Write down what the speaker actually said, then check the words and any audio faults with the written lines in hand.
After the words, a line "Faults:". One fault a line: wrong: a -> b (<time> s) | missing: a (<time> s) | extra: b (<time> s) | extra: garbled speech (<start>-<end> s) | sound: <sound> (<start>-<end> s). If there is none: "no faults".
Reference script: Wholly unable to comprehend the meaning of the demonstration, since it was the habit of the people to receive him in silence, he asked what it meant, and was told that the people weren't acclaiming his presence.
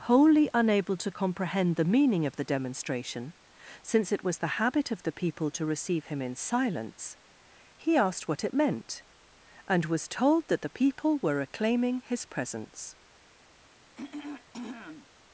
Wholly unable to comprehend the meaning of the demonstration, since it was the habit of the people to receive him in silence, he asked what it meant, and was told that the people were acclaiming his presence.
Faults:
wrong: weren't -> were (11.2 s)
sound: throat clearing (14.0-15.1 s)